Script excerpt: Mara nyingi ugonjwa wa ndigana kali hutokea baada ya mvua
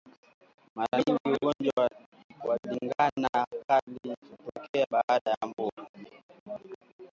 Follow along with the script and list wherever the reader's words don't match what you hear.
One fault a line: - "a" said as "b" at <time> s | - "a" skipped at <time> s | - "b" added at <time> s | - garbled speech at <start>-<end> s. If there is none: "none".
none